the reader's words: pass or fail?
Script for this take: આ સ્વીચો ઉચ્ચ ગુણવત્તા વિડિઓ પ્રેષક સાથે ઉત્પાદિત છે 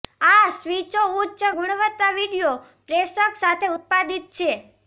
pass